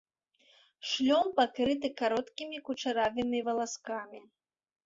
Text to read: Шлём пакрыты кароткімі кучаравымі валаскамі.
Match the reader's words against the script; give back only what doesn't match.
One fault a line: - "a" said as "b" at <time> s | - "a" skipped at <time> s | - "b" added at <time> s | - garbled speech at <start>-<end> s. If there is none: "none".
none